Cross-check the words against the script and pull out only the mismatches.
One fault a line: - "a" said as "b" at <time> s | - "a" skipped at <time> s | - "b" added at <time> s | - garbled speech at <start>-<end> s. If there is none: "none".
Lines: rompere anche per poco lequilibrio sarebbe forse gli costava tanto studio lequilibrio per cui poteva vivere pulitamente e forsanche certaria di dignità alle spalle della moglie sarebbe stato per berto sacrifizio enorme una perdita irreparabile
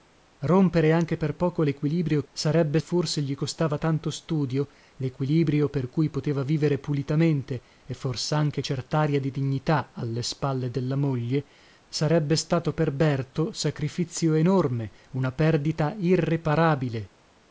none